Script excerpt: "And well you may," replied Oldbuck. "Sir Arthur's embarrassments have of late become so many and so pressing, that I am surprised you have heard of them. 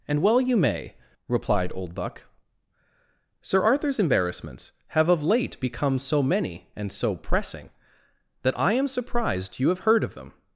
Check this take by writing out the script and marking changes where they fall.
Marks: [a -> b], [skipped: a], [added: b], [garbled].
"And well you may," replied Oldbuck. "Sir Arthur's embarrassments have of late become so many and so pressing, that I am surprised you have heard of them.